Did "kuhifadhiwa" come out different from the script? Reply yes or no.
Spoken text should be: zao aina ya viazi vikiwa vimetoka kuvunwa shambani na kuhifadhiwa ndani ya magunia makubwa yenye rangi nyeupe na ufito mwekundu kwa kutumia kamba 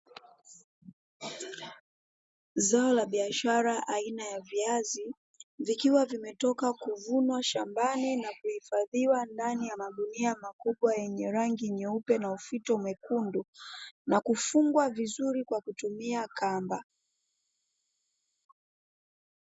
no